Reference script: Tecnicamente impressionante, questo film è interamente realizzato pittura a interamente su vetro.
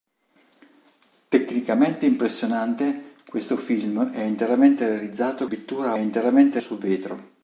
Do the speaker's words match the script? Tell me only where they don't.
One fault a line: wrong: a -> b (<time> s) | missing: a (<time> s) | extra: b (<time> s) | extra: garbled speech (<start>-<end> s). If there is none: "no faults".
no faults